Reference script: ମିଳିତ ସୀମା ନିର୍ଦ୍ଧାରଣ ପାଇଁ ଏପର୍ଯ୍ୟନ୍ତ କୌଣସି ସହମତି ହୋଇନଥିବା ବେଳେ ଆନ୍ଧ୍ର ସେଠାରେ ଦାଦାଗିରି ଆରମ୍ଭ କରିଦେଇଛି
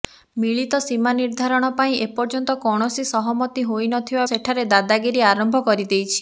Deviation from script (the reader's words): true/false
true